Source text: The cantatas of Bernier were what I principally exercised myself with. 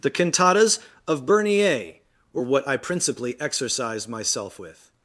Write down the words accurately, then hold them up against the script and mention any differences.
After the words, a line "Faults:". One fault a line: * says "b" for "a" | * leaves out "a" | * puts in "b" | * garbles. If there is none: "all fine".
The cantatas of Bernier were what I principally exercised myself with.
Faults:
all fine